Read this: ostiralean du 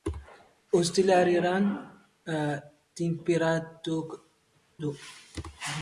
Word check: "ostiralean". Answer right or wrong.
right